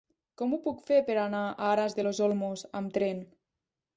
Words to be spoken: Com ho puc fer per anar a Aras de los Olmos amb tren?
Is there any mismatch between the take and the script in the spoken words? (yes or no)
no